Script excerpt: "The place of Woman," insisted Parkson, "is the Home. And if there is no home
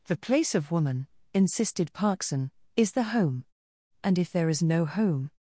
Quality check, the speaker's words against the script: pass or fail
pass